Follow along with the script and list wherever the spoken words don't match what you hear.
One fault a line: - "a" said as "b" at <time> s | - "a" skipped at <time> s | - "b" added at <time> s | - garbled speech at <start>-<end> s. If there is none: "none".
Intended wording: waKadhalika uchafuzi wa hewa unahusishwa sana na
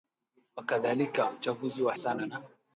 - "hewa unahusishwa" skipped at 1.9 s